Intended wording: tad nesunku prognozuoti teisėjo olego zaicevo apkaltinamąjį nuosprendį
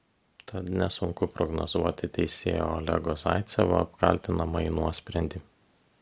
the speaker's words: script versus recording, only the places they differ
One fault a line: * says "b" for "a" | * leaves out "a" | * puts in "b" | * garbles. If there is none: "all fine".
all fine